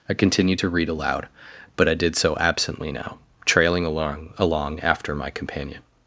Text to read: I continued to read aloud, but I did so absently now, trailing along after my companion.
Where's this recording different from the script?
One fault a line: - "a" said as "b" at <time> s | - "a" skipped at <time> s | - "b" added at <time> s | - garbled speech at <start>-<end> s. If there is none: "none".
- "along" added at 4.4 s